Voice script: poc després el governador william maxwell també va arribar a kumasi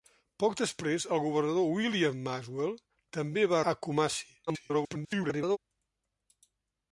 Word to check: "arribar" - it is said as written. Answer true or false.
false